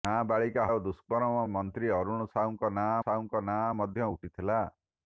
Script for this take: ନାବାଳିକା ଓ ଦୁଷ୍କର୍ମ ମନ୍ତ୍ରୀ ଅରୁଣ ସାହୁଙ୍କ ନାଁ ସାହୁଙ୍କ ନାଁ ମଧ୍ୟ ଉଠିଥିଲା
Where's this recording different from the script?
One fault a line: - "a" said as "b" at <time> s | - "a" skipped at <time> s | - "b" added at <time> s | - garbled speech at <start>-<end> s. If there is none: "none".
none